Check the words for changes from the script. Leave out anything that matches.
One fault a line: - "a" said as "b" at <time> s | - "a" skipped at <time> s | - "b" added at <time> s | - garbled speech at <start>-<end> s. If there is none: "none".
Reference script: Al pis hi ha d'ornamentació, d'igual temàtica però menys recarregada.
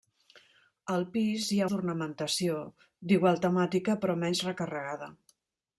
none